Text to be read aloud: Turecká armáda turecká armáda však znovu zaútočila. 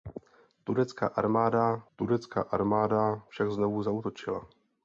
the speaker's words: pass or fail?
pass